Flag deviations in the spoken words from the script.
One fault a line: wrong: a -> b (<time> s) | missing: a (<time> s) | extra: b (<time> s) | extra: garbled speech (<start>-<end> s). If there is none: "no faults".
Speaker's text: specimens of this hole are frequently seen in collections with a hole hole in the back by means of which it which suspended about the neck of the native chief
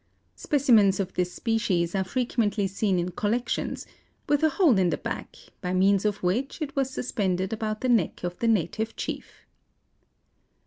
wrong: hole -> species (1.3 s)
missing: hole (4.8 s)
wrong: which -> was (6.8 s)